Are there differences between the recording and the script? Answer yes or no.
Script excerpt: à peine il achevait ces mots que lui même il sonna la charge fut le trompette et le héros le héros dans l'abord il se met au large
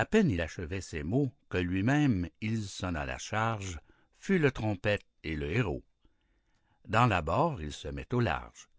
yes